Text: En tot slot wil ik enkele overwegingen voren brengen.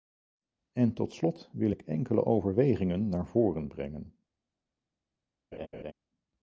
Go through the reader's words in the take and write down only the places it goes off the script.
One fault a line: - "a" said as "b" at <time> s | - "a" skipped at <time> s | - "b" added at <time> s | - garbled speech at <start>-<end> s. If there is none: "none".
- "naar" added at 3.1 s